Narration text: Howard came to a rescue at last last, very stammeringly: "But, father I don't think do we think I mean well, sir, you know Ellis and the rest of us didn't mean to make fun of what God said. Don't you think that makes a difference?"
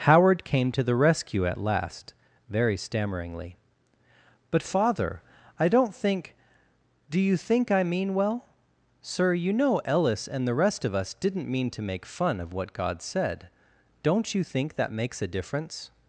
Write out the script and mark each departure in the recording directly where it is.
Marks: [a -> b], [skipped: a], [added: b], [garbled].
Howard came to [a -> the] rescue at last [skipped: last,] very stammeringly: "But, father I don't think do [we -> you] think I mean well, sir, you know Ellis and the rest of us didn't mean to make fun of what God said. Don't you think that makes a difference?"